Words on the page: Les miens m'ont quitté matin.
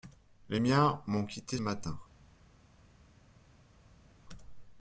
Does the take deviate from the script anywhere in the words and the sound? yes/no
no